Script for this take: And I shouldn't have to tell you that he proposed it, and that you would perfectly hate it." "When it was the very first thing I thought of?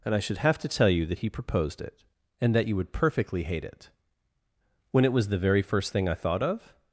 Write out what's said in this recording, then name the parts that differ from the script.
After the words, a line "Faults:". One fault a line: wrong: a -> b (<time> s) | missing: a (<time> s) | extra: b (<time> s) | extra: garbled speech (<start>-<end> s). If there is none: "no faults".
And I should have to tell you that he proposed it, and that you would perfectly hate it." "When it was the very first thing I thought of?
Faults:
wrong: shouldn't -> should (0.2 s)